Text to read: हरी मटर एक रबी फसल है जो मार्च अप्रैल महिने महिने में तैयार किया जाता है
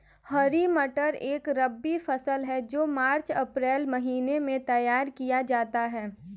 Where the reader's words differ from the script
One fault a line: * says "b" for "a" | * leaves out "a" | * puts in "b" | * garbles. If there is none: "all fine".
* leaves out "महिने"